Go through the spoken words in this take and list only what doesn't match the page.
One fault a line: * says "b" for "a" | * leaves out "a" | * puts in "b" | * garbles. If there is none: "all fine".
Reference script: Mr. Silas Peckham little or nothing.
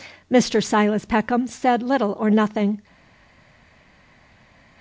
* puts in "said"